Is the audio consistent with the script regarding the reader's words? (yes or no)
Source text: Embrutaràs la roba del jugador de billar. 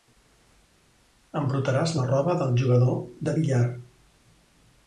yes